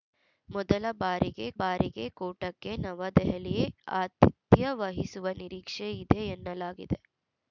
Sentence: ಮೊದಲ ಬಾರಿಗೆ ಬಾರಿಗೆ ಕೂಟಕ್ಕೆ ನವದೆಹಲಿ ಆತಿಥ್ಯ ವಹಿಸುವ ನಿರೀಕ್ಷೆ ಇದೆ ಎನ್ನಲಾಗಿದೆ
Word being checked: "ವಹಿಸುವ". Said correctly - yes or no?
yes